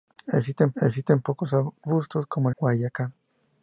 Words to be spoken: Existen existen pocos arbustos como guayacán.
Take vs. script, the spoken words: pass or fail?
pass